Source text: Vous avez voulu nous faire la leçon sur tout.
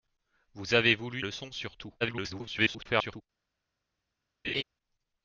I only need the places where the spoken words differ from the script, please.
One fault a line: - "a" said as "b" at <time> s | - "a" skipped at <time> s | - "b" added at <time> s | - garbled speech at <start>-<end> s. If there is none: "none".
- "nous faire la" skipped at 1.2 s
- garbled speech at 2.0-3.2 s